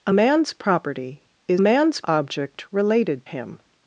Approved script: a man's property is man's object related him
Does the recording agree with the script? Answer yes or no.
yes